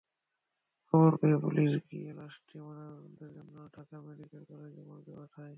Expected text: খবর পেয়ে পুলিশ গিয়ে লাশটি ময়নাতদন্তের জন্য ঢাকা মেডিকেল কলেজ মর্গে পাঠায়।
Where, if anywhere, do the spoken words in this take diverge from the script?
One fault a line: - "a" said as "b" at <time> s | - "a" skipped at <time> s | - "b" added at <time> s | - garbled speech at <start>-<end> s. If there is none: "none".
none